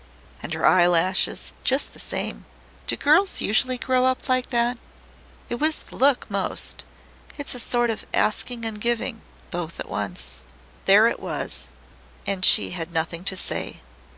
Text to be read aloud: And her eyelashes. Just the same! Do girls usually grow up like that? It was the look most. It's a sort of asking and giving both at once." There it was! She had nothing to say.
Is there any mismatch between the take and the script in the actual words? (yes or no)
yes